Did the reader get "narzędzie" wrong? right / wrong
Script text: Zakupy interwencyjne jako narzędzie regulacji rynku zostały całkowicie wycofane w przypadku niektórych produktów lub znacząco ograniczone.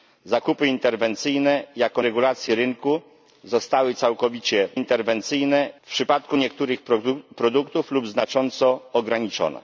wrong